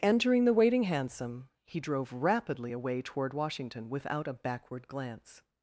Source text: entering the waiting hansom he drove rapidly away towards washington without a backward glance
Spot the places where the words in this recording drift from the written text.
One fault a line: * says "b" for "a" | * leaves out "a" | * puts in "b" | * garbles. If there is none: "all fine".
* says "toward" for "towards"